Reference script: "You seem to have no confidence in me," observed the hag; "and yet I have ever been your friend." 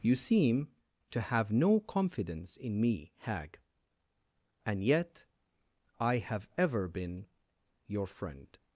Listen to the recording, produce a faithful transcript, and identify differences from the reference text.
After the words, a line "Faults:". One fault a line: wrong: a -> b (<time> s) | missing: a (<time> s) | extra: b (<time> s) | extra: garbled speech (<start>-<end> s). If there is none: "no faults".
"You seem to have no confidence in me," hag; "and yet I have ever been your friend."
Faults:
missing: observed the (3.1 s)